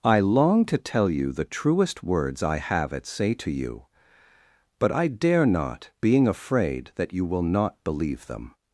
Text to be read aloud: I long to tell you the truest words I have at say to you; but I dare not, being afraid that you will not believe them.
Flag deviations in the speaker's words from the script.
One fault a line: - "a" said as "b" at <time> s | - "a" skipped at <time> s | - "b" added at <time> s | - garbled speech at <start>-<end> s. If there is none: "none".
none